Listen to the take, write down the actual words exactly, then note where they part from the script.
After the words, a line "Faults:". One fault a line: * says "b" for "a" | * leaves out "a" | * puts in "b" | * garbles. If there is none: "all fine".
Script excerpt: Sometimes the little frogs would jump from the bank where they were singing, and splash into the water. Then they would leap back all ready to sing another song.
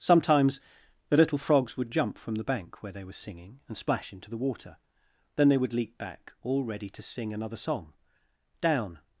Sometimes the little frogs would jump from the bank where they were singing, and splash into the water. Then they would leap back all ready to sing another song. Down
Faults:
* puts in "Down"